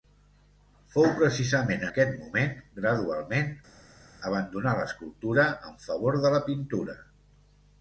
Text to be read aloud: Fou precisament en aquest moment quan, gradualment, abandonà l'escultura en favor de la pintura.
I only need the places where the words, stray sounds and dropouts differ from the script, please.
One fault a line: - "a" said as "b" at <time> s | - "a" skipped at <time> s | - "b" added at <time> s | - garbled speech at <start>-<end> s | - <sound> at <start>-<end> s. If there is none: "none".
- "en" skipped at 1.9 s
- "quan" skipped at 2.5 s